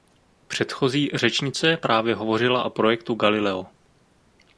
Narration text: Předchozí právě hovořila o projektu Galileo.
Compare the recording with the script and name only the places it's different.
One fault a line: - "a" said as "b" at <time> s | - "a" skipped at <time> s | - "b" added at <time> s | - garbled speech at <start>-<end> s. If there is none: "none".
- "řečnice" added at 1.1 s